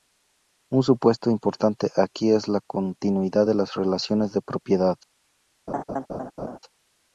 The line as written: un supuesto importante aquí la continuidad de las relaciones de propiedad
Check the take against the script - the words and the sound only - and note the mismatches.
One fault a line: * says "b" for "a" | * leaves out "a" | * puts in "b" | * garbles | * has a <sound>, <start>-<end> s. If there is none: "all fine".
* puts in "es"
* has a laugh, 5.7-6.6 s